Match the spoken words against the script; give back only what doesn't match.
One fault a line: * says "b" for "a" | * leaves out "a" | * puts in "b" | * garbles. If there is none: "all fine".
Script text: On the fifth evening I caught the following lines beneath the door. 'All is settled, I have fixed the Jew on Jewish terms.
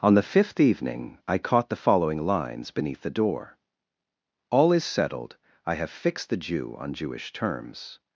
all fine